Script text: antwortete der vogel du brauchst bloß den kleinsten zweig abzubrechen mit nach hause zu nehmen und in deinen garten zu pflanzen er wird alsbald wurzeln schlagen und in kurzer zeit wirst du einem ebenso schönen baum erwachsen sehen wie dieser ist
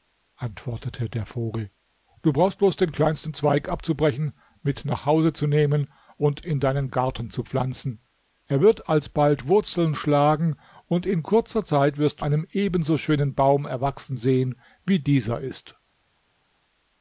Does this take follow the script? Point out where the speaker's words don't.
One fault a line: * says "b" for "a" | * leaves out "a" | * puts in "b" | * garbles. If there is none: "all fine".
all fine